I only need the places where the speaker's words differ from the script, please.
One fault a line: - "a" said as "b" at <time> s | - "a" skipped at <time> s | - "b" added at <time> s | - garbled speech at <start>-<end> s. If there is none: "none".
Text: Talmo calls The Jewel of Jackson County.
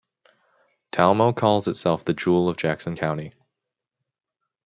- "itself" added at 1.7 s